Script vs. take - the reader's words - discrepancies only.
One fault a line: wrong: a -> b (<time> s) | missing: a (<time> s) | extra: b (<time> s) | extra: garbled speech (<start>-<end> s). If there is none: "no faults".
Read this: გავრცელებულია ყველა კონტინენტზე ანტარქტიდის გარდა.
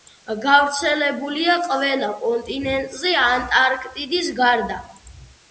no faults